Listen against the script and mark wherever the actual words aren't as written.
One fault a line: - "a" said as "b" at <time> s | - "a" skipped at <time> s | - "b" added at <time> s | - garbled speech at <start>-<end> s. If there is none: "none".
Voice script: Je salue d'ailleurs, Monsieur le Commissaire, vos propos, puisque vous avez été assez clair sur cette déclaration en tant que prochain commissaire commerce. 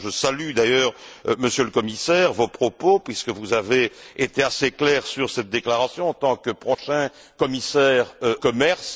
none